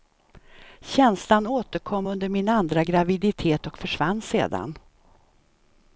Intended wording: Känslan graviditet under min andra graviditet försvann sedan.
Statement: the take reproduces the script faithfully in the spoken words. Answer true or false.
false